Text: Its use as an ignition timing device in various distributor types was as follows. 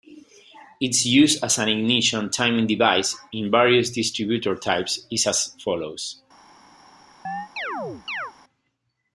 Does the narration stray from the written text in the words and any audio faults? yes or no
yes